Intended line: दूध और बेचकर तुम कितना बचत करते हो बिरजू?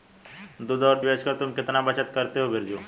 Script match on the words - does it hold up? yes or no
yes